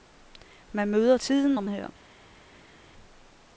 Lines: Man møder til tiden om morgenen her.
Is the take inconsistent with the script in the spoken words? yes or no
yes